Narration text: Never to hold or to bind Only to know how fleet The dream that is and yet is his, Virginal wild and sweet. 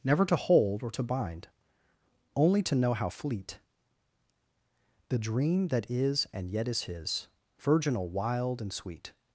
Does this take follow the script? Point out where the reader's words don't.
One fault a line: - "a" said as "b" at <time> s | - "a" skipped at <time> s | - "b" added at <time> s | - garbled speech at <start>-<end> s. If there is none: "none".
none